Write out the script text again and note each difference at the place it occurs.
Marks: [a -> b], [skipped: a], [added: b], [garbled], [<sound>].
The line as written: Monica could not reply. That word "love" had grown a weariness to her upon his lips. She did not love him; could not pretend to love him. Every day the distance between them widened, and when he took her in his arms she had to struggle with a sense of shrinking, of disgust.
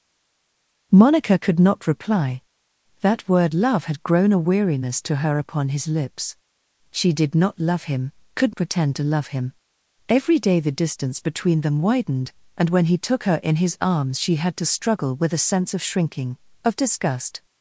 Monica could not reply. That word "love" had grown a weariness to her upon his lips. She did not love him; could [skipped: not] pretend to love him. Every day the distance between them widened, and when he took her in his arms she had to struggle with a sense of shrinking, of disgust.